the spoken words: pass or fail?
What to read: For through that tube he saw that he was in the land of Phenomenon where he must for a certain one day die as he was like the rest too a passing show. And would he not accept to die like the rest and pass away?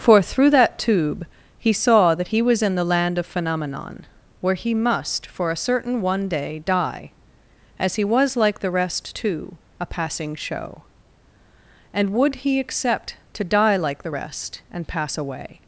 fail